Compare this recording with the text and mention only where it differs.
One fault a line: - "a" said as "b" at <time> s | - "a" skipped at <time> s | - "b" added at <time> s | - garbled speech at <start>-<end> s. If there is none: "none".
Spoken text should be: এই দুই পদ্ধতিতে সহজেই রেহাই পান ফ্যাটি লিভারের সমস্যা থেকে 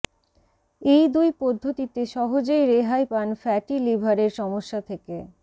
none